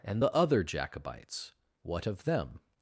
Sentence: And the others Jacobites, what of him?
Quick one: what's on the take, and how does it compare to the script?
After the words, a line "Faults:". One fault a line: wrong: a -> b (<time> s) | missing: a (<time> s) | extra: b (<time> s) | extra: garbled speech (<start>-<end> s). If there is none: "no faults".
And the other Jacobites, what of them?
Faults:
wrong: others -> other (0.3 s)
wrong: him -> them (2.2 s)